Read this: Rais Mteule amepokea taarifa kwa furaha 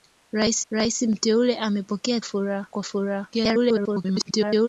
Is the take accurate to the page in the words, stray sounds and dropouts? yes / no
no